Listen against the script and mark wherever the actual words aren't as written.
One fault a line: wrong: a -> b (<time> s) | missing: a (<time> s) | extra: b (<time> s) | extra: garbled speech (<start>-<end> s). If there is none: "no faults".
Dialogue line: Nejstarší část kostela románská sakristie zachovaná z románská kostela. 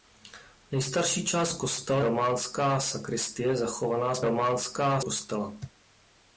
no faults